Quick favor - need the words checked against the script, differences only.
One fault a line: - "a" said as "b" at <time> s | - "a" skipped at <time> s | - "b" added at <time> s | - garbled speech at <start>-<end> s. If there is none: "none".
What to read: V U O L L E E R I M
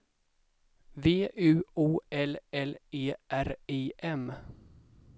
- "E" skipped at 3.1 s